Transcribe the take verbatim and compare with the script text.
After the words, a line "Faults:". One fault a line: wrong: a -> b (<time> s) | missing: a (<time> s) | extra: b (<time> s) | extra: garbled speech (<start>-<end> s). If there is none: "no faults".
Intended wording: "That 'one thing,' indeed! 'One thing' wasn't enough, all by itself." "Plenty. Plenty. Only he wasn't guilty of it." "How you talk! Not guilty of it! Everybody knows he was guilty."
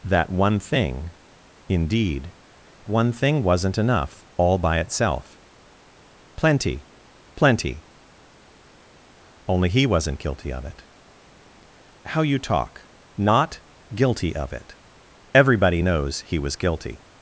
"That 'one thing,' indeed! 'One thing' wasn't enough, all by itself." "Plenty. Plenty. Only he wasn't guilty of it." "How you talk! Not guilty of it! Everybody knows he was guilty."
Faults:
no faults